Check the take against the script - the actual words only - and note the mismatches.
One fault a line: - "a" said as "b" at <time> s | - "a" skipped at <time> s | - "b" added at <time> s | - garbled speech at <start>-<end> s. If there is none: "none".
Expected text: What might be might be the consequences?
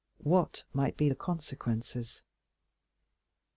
- "might be" skipped at 1.1 s